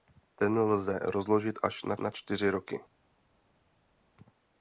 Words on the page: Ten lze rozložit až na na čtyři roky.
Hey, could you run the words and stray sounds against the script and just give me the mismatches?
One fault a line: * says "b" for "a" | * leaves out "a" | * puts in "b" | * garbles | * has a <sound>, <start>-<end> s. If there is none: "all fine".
all fine